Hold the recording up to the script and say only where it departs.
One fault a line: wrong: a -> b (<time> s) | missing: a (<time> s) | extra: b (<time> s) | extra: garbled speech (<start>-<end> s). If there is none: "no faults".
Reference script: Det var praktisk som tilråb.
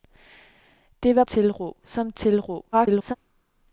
wrong: praktisk -> tilråb (1.2 s)
extra: garbled speech (2.7-3.2 s)